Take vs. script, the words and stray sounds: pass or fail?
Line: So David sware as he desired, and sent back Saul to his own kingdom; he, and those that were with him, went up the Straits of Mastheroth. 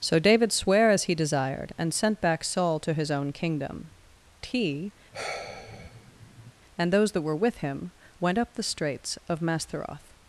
fail